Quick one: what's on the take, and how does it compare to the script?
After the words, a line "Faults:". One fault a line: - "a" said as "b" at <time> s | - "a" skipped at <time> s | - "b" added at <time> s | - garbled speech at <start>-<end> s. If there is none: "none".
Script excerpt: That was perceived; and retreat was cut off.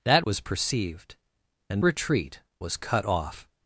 That was perceived; and retreat was cut off.
Faults:
none